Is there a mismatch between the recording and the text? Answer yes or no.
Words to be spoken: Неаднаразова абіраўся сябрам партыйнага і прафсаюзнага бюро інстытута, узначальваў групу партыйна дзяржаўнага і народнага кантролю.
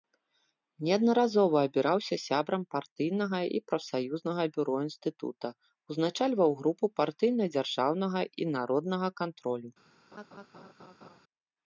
no